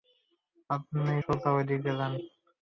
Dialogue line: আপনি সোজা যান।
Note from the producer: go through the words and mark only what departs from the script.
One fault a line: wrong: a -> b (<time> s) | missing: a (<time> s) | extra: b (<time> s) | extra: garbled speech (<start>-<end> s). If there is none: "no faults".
extra: ঐদিকে (1.6 s)